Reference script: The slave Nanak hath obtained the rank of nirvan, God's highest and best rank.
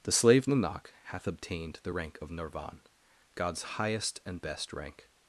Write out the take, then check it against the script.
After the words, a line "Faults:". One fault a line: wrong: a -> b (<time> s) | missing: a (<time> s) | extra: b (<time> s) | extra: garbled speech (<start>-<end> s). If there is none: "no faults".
The slave Nanak hath obtained the rank of nirvan, God's highest and best rank.
Faults:
no faults